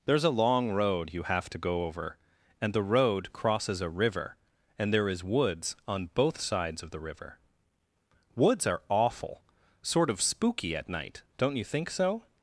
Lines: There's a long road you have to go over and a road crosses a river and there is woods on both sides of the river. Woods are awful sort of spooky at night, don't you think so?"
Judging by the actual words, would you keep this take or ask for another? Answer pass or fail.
fail